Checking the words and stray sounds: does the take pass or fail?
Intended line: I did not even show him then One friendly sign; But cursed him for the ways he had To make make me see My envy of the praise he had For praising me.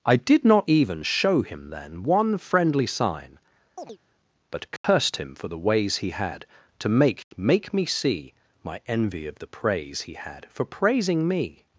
fail